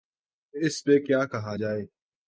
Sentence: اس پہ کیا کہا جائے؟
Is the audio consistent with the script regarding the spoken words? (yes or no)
yes